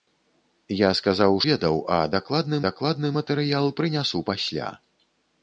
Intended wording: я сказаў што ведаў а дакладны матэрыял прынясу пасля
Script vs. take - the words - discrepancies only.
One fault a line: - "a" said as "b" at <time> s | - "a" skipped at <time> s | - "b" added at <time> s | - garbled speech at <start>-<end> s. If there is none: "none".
- "што" skipped at 1.4 s
- "дакладны" added at 2.7 s